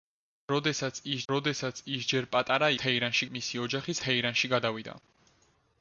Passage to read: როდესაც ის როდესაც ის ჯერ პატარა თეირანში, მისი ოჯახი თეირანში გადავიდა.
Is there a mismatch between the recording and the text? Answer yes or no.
no